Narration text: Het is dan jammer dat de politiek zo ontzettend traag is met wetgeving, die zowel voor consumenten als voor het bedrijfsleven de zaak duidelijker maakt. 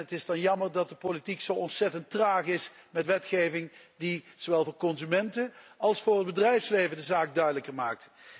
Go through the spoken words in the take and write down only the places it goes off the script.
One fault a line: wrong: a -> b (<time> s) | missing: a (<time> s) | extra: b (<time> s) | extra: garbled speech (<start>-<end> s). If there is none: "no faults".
no faults